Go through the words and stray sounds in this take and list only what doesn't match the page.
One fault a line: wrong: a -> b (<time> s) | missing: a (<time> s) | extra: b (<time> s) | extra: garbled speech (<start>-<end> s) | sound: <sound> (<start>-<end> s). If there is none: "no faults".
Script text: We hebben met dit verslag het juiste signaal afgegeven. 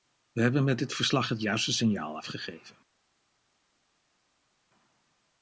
no faults